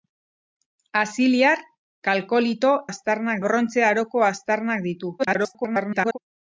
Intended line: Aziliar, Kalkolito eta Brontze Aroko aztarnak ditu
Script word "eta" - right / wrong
wrong